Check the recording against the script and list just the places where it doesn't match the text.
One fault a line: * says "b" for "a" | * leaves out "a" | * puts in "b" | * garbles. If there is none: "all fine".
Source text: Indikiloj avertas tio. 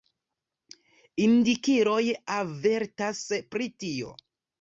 * puts in "pri"